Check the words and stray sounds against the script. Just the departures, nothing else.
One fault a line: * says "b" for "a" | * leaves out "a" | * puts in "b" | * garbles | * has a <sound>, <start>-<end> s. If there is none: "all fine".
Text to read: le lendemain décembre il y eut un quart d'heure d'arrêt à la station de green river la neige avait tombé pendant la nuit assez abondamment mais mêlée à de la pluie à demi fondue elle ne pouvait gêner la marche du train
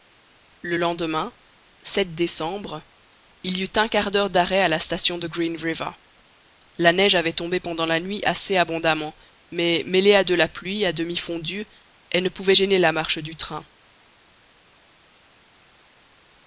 all fine